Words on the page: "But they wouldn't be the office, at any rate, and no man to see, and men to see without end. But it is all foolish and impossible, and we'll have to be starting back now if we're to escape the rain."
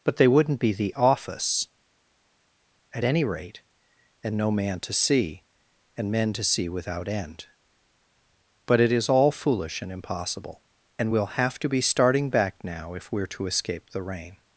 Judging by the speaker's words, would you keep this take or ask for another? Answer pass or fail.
pass